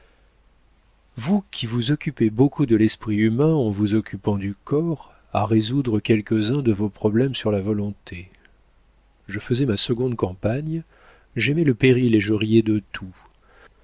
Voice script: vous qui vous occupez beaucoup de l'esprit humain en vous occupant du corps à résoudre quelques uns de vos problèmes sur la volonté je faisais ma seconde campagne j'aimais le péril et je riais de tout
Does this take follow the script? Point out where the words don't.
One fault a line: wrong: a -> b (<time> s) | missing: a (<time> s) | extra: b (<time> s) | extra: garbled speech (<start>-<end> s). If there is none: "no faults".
no faults